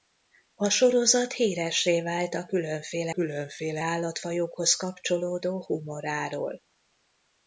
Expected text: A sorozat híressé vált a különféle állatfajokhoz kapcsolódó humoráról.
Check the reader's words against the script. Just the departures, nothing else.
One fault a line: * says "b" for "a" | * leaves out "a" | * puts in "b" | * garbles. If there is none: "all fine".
* puts in "különféle"